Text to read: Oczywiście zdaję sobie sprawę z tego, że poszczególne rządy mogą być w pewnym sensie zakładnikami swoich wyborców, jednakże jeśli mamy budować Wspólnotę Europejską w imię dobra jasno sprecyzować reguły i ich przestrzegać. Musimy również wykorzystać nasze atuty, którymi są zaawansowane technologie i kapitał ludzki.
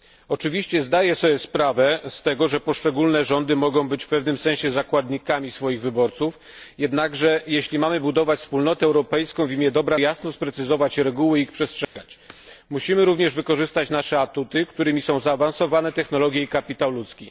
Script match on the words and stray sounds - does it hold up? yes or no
no